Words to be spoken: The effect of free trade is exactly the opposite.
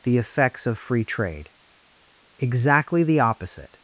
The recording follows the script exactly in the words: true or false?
false